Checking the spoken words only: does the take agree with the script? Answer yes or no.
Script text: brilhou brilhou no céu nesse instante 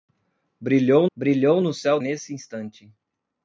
yes